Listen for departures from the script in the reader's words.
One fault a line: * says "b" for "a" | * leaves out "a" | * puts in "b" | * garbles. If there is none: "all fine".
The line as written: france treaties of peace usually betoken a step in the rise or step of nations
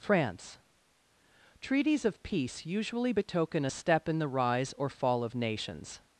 * says "fall" for "step"